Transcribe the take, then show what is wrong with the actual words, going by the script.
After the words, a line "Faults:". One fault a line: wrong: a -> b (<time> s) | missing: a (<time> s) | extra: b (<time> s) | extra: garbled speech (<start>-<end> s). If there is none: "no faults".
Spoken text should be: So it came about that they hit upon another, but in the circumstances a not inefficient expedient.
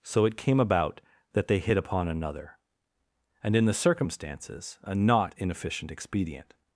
So it came about that they hit upon another, and in the circumstances a not inefficient expedient.
Faults:
wrong: but -> and (3.4 s)